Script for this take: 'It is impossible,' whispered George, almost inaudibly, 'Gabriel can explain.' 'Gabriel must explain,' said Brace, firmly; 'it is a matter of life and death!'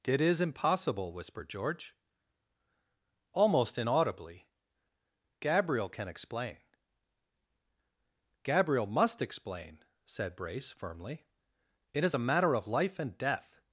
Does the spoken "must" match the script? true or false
true